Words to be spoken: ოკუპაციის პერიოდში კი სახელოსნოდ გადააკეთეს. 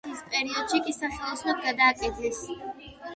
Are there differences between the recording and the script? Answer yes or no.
no